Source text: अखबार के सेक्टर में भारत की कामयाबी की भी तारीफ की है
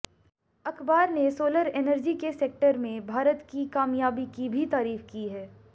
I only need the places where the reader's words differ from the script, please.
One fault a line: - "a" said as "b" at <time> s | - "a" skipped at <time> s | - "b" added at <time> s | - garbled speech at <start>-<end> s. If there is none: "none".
- "ने सोलर एनर्जी" added at 1.1 s